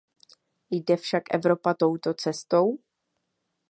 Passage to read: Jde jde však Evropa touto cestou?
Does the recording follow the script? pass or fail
fail